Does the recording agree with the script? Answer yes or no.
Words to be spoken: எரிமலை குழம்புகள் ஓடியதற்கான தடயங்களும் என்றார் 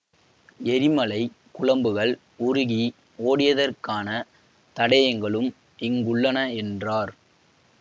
no